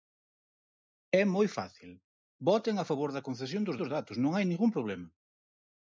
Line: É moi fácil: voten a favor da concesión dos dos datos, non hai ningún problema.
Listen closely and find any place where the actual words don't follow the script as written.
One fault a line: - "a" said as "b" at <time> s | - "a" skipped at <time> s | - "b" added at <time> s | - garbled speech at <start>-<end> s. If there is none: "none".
none